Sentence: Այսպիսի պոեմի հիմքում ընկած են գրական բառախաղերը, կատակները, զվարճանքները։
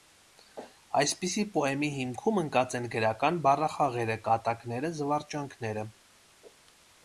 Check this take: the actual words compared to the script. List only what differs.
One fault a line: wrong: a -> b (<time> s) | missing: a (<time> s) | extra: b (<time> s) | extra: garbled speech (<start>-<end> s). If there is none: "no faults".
no faults